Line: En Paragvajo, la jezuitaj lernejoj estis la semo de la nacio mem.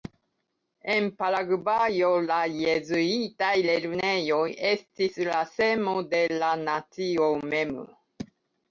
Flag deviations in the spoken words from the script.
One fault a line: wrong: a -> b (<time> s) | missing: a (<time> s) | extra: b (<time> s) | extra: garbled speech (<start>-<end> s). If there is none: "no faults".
no faults